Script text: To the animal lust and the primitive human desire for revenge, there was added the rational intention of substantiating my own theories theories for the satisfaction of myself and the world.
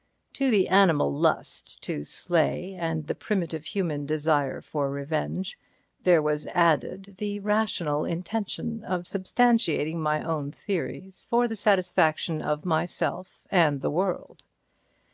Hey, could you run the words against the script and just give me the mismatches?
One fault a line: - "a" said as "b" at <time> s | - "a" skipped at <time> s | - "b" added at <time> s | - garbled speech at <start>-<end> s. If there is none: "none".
- "to slay" added at 1.8 s
- "theories" skipped at 11.3 s